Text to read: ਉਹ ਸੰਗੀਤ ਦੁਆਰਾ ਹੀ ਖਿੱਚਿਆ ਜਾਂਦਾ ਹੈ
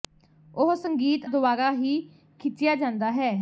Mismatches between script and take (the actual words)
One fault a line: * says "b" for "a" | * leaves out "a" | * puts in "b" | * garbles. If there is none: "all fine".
all fine